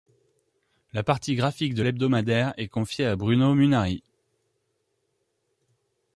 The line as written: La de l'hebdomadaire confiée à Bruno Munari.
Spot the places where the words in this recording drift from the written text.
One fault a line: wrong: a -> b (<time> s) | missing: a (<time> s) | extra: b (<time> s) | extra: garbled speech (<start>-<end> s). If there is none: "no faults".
extra: partie graphique (1.0 s)
extra: est (2.6 s)